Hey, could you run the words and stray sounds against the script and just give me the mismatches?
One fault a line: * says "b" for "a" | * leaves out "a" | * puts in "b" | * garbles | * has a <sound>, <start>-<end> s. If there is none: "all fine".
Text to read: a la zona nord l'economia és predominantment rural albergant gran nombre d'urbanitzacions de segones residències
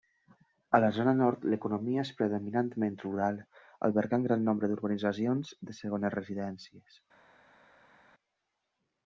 all fine